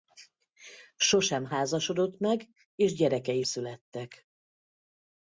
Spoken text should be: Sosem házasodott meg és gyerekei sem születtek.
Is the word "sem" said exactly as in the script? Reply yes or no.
no